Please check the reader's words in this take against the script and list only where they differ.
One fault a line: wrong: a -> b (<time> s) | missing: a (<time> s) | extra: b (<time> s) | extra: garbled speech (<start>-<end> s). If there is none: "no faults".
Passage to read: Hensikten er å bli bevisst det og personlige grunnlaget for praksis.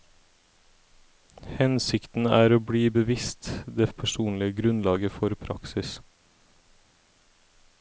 no faults